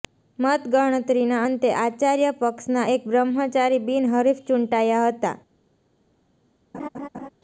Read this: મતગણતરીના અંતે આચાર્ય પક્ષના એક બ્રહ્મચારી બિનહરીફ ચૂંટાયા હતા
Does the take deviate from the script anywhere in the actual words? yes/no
no